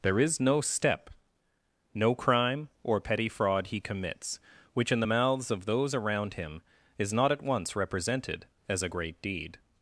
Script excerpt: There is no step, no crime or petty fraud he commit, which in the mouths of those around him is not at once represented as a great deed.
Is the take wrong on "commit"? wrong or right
wrong